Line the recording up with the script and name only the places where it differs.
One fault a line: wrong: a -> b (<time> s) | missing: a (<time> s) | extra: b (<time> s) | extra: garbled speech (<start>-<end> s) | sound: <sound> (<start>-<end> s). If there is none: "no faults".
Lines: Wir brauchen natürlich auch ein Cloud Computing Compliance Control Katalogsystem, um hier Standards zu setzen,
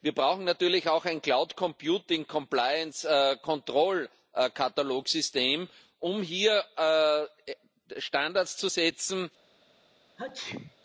sound: sneeze (10.2-10.8 s)